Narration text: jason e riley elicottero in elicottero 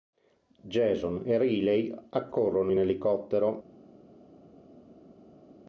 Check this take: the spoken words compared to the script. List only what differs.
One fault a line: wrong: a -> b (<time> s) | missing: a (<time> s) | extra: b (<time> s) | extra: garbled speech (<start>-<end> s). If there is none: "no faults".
wrong: elicottero -> accorrono (2.1 s)